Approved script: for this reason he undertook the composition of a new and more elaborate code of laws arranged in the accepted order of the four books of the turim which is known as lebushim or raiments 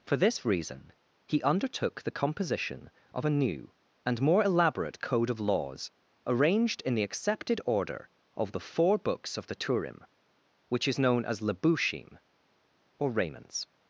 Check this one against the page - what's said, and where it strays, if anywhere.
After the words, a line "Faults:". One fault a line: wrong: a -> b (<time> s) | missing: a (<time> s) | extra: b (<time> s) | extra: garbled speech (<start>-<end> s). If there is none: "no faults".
for this reason he undertook the composition of a new and more elaborate code of laws arranged in the accepted order of the four books of the turim which is known as lebushim or raiments
Faults:
no faults